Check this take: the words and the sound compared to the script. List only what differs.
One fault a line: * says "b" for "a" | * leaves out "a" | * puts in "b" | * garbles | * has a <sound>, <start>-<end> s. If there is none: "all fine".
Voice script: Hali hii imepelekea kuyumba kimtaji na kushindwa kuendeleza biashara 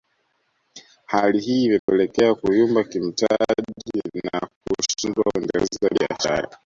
* has a dropout, 1.8-1.9 s